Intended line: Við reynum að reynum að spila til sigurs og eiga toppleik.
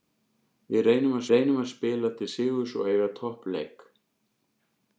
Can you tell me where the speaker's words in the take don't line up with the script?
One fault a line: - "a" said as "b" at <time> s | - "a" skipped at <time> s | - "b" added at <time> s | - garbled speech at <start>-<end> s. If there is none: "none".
none